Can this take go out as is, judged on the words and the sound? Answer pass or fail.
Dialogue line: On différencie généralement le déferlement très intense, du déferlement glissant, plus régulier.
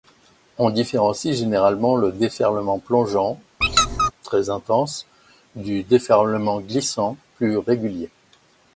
fail